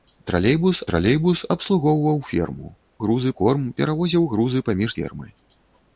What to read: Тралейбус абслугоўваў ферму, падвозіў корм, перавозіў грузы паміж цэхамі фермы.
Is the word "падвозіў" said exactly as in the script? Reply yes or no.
no